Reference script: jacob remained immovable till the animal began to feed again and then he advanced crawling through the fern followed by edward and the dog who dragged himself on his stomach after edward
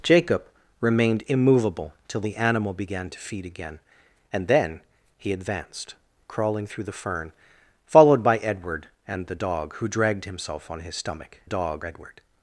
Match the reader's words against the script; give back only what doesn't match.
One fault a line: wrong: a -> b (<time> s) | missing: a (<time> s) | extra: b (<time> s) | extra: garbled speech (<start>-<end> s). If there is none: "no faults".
wrong: after -> dog (11.4 s)